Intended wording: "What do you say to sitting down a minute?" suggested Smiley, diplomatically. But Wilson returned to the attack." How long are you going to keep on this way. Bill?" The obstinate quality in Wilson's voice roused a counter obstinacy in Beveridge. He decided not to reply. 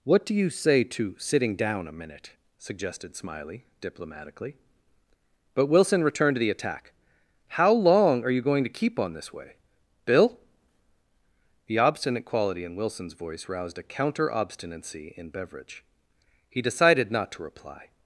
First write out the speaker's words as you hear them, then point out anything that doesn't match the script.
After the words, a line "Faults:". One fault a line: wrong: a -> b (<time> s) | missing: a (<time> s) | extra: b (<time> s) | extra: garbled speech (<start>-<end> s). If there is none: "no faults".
"What do you say to sitting down a minute?" suggested Smiley, diplomatically. But Wilson returned to the attack." How long are you going to keep on this way. Bill?" The obstinate quality in Wilson's voice roused a counter obstinacy in Beveridge. He decided not to reply.
Faults:
no faults